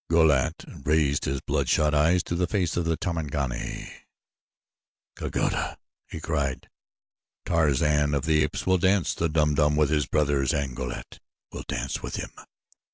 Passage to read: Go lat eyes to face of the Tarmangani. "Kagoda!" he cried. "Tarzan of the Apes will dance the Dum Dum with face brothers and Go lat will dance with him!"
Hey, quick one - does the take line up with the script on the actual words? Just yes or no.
no